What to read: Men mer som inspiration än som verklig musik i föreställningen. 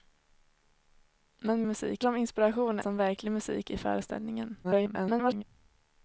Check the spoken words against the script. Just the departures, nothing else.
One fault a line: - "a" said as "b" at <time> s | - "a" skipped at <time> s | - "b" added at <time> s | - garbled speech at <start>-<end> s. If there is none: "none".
- "mer" said as "musik" at 1.6 s
- "än" skipped at 2.8 s
- garbled speech at 4.6-5.4 s